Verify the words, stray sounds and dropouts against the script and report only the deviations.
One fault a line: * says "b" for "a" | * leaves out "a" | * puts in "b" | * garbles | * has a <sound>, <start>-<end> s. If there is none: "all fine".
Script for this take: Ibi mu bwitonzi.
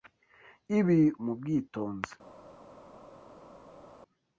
all fine